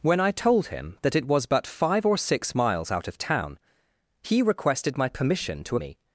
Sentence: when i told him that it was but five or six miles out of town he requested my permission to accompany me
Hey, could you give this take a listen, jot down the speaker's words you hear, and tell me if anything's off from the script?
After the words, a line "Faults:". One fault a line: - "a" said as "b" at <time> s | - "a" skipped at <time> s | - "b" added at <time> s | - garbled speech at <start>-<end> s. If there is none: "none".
when i told him that it was but five or six miles out of town he requested my permission to me
Faults:
- "accompany" skipped at 5.8 s